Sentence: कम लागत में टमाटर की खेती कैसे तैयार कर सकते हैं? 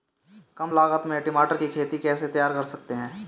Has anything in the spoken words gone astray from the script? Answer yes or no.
no